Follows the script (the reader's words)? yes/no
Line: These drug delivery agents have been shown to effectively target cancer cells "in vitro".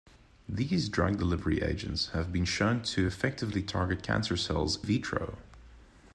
no